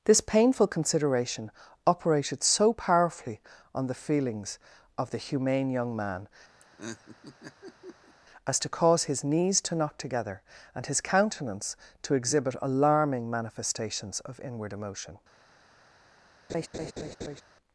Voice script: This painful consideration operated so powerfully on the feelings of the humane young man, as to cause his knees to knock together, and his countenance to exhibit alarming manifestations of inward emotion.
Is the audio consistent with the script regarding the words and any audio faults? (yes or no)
no